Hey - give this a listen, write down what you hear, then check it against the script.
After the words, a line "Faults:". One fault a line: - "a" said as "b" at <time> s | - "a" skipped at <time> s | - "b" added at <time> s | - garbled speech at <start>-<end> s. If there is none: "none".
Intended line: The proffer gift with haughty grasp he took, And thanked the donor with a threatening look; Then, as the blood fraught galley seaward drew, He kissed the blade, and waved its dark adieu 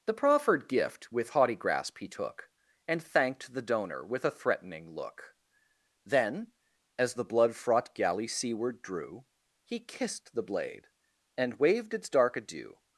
The proffered gift with haughty grasp he took, And thanked the donor with a threatening look; Then, as the blood fraught galley seaward drew, He kissed the blade, and waved its dark adieu
Faults:
- "proffer" said as "proffered" at 0.1 s